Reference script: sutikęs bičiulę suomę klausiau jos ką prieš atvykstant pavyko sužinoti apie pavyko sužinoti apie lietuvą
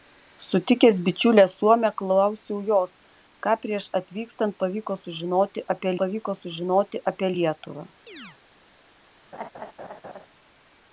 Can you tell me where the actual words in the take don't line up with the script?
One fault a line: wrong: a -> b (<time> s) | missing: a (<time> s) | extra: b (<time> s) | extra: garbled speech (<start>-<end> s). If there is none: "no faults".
no faults